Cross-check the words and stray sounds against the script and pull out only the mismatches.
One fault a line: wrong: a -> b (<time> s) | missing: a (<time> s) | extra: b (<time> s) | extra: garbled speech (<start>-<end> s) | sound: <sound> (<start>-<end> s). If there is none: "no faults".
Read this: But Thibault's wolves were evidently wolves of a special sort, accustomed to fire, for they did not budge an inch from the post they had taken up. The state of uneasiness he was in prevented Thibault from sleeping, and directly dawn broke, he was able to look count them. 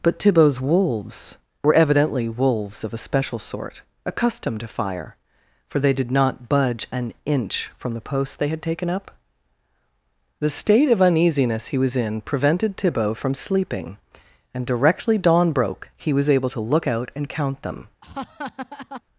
extra: out and (16.9 s)
sound: laugh (18.0-19.0 s)